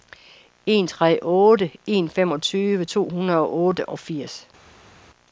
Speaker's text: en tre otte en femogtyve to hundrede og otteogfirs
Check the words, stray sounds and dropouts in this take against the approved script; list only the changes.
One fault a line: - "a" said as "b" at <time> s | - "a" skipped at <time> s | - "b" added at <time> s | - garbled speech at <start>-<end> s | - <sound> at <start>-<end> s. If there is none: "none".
none